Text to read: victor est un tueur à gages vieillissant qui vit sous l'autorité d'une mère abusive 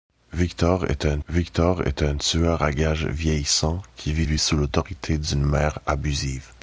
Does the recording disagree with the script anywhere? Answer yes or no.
yes